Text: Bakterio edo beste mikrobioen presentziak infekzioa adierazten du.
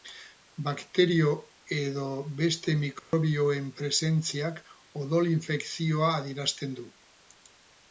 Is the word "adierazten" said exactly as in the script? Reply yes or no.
yes